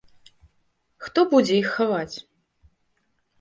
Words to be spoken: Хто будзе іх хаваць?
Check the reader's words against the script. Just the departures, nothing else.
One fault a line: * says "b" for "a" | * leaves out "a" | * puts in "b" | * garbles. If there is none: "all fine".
all fine